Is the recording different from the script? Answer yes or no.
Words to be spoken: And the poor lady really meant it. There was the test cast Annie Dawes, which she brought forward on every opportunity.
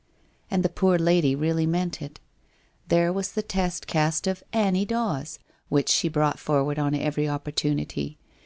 yes